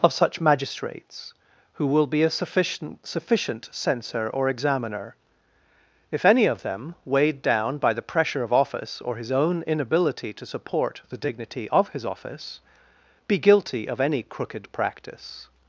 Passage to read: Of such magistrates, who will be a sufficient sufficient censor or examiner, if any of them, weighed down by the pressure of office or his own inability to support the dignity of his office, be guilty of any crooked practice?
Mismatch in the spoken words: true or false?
false